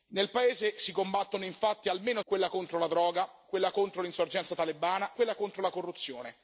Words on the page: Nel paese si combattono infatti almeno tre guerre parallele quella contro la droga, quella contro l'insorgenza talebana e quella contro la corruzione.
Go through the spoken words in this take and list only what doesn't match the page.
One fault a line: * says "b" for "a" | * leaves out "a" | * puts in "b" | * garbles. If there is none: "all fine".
* leaves out "tre guerre parallele"
* leaves out "e"